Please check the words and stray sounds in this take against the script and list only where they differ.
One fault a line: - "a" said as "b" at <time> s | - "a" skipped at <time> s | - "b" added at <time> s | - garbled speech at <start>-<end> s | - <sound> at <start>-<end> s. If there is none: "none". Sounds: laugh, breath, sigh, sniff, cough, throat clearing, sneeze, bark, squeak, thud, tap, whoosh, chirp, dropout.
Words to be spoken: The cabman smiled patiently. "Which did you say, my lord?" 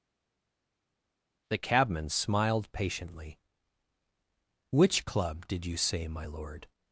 - "club" added at 5.0 s